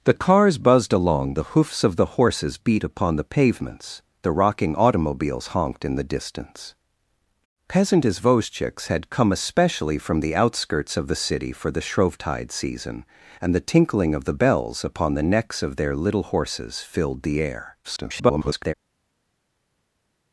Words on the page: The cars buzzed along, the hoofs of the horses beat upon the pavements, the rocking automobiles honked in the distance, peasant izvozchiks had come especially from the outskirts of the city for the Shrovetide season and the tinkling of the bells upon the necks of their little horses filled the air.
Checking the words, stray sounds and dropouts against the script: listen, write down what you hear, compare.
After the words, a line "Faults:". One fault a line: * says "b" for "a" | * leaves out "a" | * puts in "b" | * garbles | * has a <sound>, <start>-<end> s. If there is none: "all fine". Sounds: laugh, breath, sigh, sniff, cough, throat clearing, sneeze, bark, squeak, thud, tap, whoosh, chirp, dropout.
The cars buzzed along, the hoofs of the horses beat upon the pavements, the rocking automobiles honked in the distance, peasant izvozchiks had come especially from the outskirts of the city for the Shrovetide season and the tinkling of the bells upon the necks of their little horses filled the air. [garbled]
Faults:
* garbles